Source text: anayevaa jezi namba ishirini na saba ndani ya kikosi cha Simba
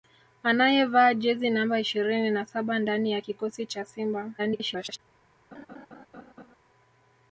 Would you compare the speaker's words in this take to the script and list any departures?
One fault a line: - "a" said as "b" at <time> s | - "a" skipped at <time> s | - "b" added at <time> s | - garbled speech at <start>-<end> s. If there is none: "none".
- garbled speech at 4.4-5.0 s